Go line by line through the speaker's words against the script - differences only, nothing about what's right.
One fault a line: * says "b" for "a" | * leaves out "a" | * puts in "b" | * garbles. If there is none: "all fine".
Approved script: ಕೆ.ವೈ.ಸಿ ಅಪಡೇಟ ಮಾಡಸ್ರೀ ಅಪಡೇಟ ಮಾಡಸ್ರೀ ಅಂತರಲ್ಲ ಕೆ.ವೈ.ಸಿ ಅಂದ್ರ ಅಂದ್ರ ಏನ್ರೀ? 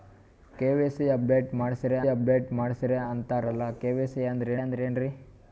all fine